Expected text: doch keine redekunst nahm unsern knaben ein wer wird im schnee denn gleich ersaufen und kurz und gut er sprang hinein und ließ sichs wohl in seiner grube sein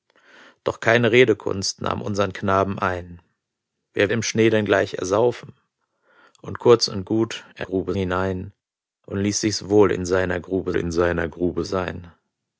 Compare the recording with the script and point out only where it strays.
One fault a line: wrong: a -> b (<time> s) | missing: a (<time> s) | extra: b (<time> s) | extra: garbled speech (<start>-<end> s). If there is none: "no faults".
missing: wird (4.1 s)
wrong: sprang -> grube (7.6 s)
extra: in seiner grube (10.8 s)